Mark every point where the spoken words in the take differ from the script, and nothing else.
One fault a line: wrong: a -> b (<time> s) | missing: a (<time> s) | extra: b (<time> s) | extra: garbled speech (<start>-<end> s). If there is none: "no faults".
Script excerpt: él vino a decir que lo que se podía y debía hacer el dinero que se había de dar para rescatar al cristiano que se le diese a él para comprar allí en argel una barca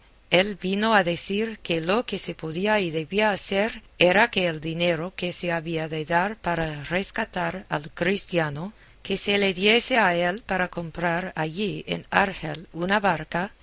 extra: era que (4.0 s)